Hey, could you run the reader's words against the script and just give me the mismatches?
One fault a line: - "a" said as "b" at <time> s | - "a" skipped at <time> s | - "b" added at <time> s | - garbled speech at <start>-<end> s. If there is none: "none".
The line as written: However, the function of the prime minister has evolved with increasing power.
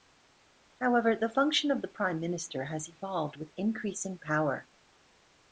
none